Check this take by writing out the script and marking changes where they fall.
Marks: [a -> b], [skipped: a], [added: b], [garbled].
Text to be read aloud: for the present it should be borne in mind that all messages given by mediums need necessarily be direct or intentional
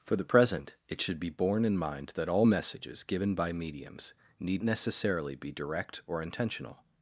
for the present it should be borne in mind that all messages given by mediums need necessarily be direct or intentional